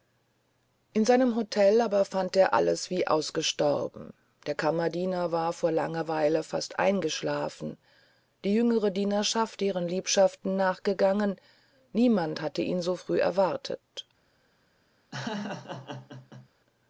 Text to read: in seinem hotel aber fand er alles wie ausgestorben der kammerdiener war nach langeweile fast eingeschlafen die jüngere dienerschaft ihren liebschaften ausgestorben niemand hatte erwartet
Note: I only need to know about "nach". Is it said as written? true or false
false